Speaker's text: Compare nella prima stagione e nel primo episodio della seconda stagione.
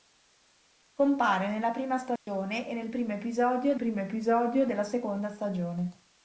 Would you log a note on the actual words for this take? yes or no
yes